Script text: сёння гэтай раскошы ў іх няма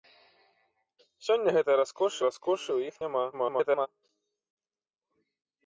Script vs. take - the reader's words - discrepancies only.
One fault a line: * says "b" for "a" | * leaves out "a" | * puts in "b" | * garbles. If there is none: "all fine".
* puts in "раскошы"
* garbles